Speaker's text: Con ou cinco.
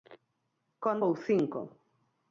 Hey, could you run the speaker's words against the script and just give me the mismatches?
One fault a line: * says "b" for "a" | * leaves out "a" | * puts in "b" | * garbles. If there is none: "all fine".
all fine